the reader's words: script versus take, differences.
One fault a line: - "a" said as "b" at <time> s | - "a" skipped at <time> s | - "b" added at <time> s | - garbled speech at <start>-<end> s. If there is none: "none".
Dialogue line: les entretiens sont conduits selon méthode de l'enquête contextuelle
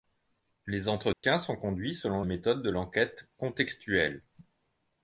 none